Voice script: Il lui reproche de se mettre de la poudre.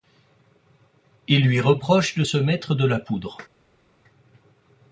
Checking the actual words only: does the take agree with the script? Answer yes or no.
yes